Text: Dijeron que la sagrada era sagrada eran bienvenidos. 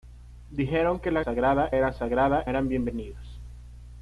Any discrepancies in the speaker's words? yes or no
no